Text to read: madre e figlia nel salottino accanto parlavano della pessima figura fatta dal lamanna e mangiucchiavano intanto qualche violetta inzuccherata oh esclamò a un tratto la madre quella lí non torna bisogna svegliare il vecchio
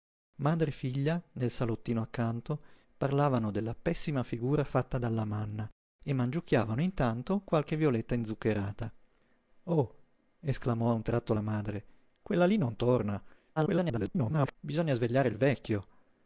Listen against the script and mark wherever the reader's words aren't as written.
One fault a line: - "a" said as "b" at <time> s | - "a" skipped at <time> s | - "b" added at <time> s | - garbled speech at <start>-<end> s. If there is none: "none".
- garbled speech at 13.6-14.6 s